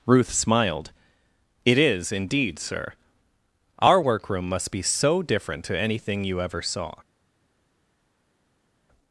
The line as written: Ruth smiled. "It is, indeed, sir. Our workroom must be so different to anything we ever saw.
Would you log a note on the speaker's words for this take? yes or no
yes